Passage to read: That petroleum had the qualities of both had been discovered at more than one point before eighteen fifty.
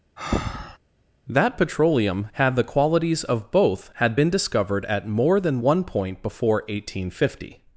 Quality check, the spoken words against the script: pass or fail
pass